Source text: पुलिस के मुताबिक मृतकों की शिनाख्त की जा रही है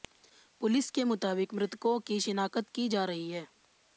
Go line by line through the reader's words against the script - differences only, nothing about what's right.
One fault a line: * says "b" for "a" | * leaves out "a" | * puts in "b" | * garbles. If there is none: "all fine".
all fine